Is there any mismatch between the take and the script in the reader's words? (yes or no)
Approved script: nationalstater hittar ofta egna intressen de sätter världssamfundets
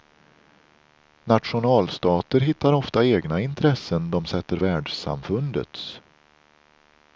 no